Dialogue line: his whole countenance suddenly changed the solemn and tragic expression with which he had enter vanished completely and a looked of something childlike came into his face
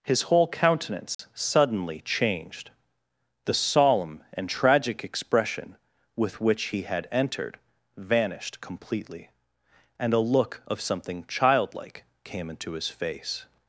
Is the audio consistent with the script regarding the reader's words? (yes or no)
no